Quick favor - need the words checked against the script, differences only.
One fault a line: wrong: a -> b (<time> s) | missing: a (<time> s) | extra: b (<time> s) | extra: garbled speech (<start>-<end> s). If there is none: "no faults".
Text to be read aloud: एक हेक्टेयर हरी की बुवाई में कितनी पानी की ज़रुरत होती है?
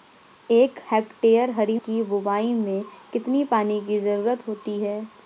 no faults